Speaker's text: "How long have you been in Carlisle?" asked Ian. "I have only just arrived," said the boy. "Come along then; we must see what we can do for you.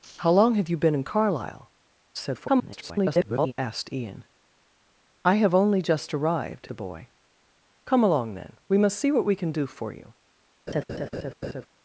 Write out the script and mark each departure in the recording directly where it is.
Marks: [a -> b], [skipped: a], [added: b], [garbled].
"How long have you been in Carlisle?" [garbled] asked Ian. "I have only just arrived," [skipped: said] the boy. "Come along then; we must see what we can do for you.